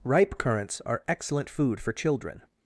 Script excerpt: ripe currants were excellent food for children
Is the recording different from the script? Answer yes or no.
yes